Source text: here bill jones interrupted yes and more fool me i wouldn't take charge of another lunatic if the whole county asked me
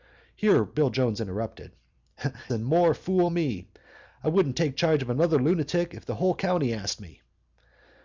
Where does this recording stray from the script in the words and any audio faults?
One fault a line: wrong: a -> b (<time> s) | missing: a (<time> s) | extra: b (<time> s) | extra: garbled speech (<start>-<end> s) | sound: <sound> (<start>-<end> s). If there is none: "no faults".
missing: yes (1.7 s)